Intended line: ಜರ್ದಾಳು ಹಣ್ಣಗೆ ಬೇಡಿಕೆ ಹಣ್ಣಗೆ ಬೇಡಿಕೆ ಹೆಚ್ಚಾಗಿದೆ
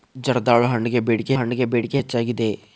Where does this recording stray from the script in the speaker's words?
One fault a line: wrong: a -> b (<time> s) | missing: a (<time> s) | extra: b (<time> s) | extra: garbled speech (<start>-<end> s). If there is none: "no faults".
no faults